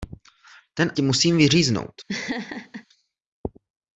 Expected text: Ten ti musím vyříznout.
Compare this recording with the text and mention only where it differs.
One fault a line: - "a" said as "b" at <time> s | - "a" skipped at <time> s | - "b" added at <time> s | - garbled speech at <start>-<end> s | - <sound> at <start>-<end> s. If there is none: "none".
- laugh at 2.1-2.9 s